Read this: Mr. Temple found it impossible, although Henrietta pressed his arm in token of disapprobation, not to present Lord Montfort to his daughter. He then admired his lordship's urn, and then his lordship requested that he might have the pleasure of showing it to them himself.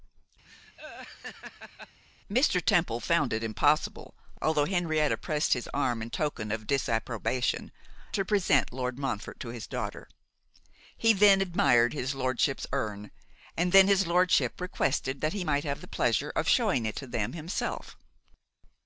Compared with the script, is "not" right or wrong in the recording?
wrong